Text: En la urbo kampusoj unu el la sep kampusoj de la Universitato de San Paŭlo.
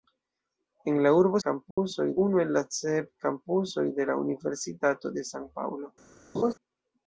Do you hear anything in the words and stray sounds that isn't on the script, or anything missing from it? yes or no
yes